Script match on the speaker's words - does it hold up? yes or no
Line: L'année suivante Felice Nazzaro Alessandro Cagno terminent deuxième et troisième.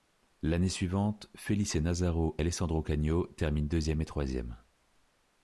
yes